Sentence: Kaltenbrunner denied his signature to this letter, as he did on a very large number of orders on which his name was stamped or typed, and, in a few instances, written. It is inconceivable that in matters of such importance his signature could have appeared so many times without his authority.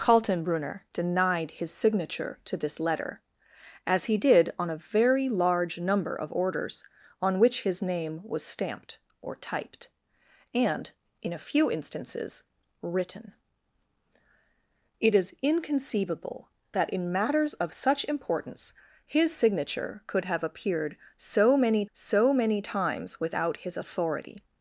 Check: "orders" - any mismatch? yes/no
no